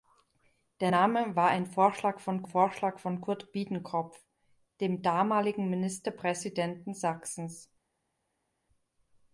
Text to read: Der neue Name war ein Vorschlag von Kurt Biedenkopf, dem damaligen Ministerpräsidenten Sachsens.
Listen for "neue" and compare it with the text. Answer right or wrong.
wrong